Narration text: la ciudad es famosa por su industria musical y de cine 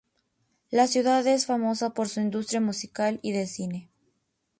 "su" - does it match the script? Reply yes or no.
yes